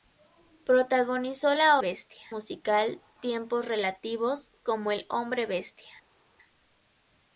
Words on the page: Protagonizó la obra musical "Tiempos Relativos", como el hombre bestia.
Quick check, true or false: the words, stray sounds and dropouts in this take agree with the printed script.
false